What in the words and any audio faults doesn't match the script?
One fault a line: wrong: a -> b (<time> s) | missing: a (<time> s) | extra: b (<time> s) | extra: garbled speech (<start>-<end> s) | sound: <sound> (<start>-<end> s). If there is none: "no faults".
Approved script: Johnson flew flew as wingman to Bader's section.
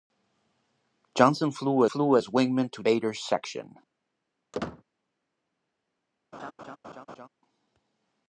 sound: squeak (4.5-4.8 s)
sound: laugh (6.3-7.3 s)